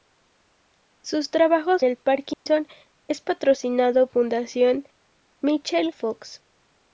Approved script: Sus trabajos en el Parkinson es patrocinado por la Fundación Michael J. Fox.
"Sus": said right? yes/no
yes